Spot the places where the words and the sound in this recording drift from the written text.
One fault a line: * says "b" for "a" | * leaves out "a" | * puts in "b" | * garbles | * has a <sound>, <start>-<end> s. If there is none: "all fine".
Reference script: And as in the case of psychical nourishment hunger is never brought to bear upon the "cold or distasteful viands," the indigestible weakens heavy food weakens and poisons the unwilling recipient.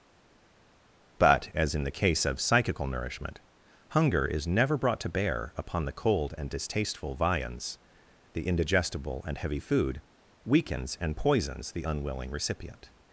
* says "But" for "And"
* says "and" for "or"
* says "and" for "weakens"